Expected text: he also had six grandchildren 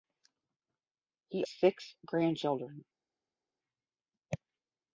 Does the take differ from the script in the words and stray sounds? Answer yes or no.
yes